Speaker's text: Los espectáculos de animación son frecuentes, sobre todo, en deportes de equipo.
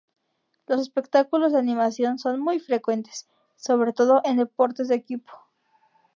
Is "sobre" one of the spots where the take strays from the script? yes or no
no